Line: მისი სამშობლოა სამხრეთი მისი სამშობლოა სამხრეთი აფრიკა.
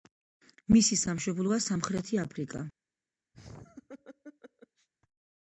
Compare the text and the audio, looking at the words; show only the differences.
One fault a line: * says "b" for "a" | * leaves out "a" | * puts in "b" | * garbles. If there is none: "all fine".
* leaves out "მისი სამშობლოა სამხრეთი"